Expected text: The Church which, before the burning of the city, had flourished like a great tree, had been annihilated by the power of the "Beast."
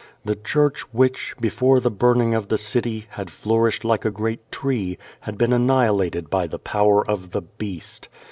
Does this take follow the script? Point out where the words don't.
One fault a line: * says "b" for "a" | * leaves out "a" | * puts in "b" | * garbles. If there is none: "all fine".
all fine